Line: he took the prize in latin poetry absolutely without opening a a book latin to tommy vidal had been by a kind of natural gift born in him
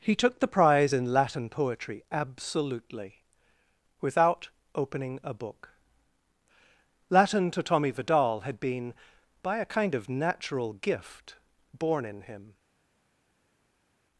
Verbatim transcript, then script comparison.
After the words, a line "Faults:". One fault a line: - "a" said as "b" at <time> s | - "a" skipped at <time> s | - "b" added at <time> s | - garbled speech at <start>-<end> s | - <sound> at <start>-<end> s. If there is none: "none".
he took the prize in latin poetry absolutely without opening a book latin to tommy vidal had been by a kind of natural gift born in him
Faults:
- "a" skipped at 5.3 s